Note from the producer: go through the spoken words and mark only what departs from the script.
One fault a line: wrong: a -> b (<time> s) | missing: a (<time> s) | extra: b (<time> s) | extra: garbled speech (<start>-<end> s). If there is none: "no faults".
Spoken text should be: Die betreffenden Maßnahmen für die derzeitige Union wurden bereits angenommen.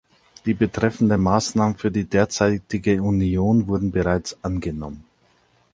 no faults